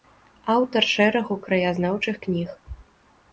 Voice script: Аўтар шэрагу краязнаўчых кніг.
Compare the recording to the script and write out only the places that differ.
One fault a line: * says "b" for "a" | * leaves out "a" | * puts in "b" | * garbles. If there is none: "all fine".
all fine